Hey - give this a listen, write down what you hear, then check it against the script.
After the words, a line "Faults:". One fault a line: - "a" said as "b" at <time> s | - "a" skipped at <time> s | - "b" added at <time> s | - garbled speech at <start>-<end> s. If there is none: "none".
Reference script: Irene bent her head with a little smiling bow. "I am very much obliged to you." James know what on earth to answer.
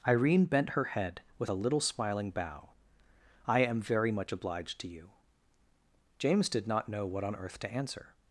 Irene bent her head with a little smiling bow. "I am very much obliged to you." James did not know what on earth to answer.
Faults:
- "did not" added at 6.5 s